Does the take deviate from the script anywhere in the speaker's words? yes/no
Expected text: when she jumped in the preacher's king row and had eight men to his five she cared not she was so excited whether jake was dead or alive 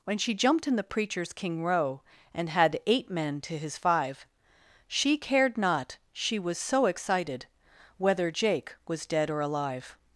no